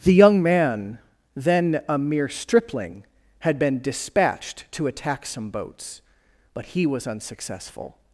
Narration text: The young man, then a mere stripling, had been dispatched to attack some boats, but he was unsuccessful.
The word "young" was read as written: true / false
true